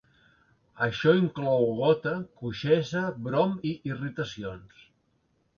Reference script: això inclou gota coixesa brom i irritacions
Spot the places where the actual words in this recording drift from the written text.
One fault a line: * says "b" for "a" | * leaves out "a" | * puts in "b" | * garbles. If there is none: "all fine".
all fine